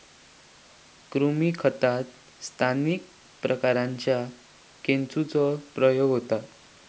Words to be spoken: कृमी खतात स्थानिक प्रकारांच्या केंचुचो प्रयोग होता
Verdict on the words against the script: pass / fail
pass